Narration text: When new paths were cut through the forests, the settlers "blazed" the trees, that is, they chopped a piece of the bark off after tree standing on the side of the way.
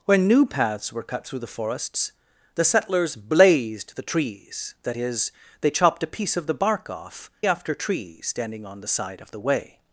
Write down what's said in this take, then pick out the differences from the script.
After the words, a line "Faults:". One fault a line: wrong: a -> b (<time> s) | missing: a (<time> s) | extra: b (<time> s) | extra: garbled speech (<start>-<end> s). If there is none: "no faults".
When new paths were cut through the forests, the settlers "blazed" the trees, that is, they chopped a piece of the bark off after tree standing on the side of the way.
Faults:
no faults